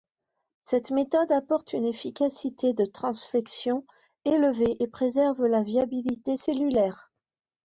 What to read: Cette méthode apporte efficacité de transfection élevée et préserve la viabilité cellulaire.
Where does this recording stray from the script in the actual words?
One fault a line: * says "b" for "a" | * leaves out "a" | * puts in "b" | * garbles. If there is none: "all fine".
* puts in "une"